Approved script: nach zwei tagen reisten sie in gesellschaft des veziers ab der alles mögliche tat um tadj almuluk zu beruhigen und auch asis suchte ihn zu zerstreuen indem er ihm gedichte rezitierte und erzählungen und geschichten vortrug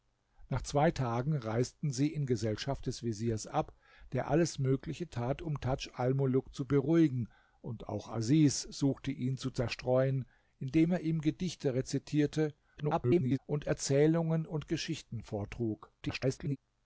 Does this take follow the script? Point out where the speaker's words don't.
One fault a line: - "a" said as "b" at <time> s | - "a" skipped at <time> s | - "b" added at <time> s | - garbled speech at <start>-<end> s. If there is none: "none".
- garbled speech at 12.8-13.4 s
- garbled speech at 16.0-16.6 s